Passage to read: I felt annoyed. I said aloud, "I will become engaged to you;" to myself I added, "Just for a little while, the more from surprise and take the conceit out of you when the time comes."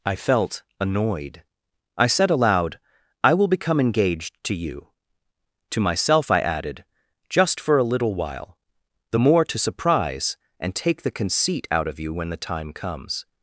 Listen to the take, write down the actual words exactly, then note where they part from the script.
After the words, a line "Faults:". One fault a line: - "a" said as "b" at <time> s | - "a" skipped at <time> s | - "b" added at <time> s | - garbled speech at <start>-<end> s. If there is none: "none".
I felt annoyed. I said aloud, "I will become engaged to you;" to myself I added, "Just for a little while, the more to surprise and take the conceit out of you when the time comes."
Faults:
- "from" said as "to" at 9.4 s